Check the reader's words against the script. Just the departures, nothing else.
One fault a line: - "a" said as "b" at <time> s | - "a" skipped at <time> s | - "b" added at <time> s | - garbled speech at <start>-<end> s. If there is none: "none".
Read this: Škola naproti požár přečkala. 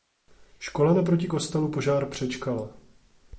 - "kostelu" added at 1.3 s